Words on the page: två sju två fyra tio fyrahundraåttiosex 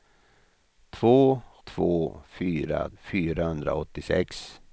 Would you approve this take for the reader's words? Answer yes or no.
no